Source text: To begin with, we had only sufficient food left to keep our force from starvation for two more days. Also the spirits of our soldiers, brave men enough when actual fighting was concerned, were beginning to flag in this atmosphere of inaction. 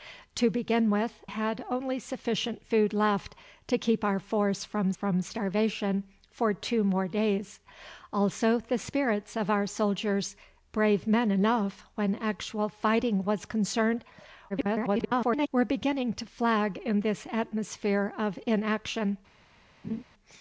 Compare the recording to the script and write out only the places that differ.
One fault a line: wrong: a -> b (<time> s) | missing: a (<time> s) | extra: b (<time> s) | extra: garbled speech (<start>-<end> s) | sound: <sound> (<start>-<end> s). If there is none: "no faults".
missing: we (1.2 s)
extra: from (4.9 s)
extra: garbled speech (14.5-15.5 s)
sound: laugh (19.8-20.0 s)